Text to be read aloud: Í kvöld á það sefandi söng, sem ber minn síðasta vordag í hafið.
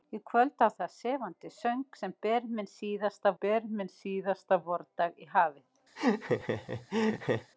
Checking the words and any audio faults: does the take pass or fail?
fail